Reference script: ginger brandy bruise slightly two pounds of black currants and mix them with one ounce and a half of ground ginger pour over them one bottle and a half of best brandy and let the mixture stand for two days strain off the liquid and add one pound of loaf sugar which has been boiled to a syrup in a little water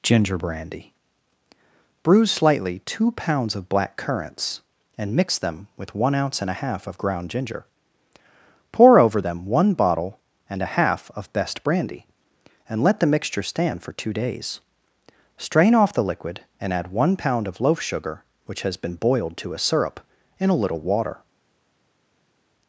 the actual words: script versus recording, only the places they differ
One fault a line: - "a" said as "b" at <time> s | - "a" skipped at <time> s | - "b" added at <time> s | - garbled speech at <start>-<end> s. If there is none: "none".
none